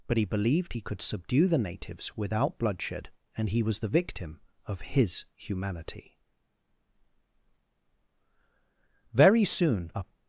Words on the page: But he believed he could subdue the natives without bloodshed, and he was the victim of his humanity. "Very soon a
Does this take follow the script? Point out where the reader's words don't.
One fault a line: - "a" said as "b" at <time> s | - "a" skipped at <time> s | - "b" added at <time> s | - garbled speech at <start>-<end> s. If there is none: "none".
none